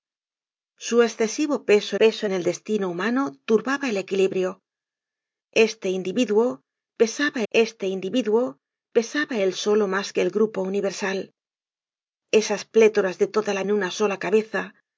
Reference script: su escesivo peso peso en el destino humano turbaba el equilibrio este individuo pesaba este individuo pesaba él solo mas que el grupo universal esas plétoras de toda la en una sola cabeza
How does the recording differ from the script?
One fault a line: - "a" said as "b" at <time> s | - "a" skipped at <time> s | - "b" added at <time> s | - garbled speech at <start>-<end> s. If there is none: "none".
none